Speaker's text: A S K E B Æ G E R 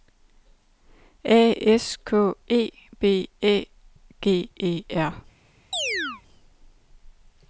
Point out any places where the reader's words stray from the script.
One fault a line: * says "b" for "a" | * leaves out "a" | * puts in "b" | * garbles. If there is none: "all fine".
all fine